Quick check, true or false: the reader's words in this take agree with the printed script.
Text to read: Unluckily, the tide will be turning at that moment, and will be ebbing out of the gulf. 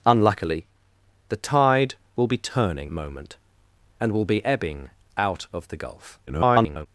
false